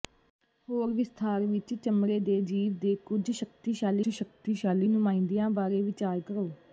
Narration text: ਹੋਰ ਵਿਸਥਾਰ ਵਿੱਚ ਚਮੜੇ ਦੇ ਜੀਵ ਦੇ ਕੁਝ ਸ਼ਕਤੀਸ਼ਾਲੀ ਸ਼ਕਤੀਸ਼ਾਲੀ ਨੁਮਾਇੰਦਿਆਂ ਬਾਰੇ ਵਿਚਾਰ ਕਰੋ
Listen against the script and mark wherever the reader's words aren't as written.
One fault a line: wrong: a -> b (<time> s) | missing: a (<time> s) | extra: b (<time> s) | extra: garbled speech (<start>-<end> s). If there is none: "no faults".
no faults